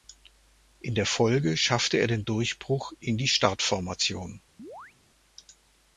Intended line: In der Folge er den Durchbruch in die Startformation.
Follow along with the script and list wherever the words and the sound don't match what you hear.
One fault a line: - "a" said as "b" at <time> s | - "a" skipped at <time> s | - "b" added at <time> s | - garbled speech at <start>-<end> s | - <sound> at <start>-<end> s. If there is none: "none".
- "schaffte" added at 1.6 s
- chirp at 4.6-4.9 s